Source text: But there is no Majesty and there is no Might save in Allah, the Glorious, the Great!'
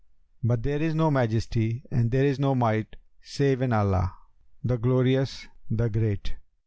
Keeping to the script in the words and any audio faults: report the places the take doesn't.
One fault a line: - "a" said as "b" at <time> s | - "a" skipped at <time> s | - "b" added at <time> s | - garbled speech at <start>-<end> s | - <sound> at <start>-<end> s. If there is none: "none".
none